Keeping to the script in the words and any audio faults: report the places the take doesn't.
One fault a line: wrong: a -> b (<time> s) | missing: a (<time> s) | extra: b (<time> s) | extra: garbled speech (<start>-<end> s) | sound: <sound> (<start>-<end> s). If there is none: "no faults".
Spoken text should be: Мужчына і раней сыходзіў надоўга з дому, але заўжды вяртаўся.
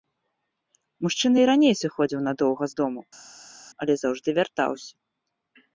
no faults